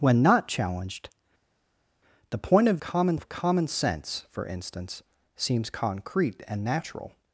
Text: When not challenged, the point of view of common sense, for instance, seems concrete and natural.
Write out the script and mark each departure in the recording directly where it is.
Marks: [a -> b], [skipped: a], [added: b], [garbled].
When not challenged, the point of [view -> common] of common sense, for instance, seems concrete and natural.